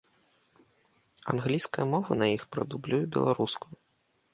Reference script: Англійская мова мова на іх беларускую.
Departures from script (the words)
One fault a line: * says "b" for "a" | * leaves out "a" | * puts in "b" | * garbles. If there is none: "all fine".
* leaves out "мова"
* puts in "прадублюе"